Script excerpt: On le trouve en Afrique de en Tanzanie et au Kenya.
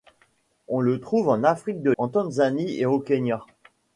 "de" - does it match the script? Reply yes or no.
yes